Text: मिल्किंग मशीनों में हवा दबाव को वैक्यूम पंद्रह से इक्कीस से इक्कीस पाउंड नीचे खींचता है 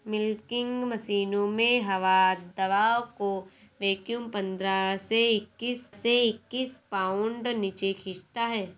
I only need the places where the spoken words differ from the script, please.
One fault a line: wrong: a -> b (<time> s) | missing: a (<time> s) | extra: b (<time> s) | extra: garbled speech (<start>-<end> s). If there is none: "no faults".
no faults